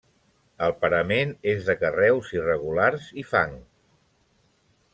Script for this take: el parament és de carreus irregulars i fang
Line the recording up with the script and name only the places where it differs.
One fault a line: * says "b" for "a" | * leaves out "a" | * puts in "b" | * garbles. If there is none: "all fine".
all fine